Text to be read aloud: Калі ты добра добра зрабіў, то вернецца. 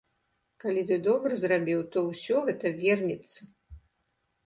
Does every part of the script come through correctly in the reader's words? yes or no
no